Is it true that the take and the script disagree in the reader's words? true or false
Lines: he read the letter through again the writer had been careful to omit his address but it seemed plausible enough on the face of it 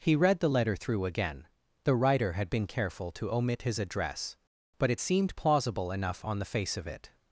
false